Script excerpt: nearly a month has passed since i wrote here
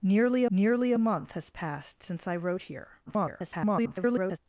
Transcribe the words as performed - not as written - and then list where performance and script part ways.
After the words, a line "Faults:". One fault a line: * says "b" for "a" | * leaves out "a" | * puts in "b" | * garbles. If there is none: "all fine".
nearly nearly a month has passed since i wrote here [garbled]
Faults:
* puts in "nearly"
* garbles